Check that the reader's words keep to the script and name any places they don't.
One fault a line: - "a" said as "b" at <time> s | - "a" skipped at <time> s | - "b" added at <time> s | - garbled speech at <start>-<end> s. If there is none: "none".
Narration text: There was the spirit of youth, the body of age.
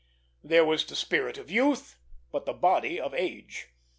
- "but" added at 2.3 s